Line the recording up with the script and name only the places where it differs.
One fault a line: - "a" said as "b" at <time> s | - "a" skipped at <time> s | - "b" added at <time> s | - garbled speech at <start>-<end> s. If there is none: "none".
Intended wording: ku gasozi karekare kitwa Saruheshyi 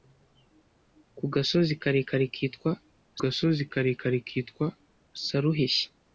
- "gasozi karekare kitwa" added at 3.2 s